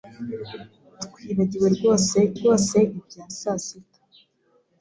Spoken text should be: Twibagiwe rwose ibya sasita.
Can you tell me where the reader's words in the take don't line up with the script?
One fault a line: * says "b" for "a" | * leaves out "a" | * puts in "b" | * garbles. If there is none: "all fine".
* puts in "rwose"